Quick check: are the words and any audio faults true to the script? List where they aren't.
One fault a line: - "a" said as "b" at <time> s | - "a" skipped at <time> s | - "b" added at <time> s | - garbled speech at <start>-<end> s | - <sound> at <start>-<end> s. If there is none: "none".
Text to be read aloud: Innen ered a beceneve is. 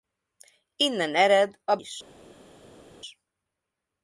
- "beceneve" skipped at 1.8 s